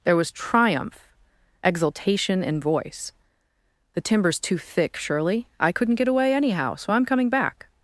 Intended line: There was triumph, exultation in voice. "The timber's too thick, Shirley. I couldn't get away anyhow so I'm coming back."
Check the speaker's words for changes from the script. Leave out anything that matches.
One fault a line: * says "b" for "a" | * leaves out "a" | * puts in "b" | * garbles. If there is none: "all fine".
all fine